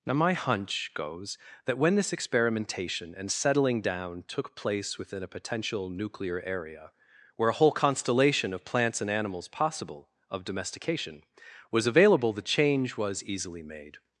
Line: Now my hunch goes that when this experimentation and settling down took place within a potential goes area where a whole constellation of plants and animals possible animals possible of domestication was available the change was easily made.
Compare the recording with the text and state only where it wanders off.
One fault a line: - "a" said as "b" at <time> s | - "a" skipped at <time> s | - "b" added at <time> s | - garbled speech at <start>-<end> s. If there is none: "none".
- "goes" said as "nuclear" at 5.9 s
- "animals possible" skipped at 10.1 s